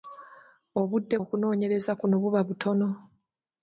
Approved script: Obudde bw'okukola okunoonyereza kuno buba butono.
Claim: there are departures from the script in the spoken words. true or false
true